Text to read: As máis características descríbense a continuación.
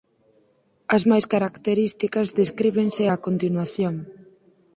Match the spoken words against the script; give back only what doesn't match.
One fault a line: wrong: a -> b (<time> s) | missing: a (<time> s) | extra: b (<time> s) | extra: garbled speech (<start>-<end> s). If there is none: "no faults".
no faults